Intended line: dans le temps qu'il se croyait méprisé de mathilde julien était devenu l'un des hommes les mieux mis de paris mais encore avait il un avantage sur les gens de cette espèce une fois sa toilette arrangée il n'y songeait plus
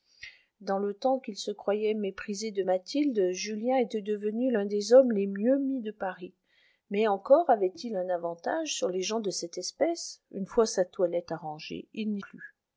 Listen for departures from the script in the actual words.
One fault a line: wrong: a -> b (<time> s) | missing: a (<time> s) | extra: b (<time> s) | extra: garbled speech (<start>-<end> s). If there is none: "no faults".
missing: songeait (12.2 s)